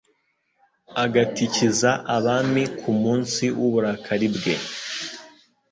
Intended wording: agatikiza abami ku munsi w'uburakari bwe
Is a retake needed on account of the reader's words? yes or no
no